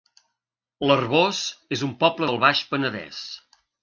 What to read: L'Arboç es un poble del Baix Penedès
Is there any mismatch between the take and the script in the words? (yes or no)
no